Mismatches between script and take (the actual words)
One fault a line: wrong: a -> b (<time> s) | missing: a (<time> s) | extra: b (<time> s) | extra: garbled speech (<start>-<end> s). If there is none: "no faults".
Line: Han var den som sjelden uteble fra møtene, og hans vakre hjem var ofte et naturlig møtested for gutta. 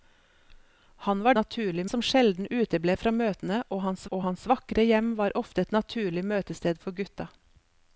wrong: den -> naturlig (1.4 s)
extra: og hans (4.1 s)